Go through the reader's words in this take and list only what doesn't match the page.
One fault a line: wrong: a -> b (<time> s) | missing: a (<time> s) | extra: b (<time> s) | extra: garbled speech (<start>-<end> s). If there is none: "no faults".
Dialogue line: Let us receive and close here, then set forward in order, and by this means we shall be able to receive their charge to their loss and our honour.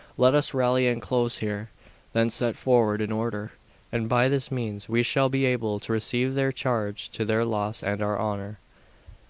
wrong: receive -> rally (0.6 s)